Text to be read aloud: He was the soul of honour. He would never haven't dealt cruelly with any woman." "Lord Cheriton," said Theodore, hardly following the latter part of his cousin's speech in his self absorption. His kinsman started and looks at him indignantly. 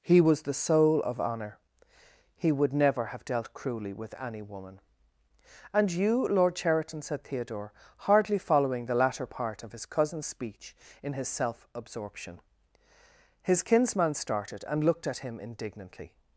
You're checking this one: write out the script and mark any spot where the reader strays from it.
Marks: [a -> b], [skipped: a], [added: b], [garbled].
He was the soul of honour. He would never [haven't -> have] dealt cruelly with any woman." [added: And you] "Lord Cheriton," said Theodore, hardly following the latter part of his cousin's speech in his self absorption. His kinsman started and [looks -> looked] at him indignantly.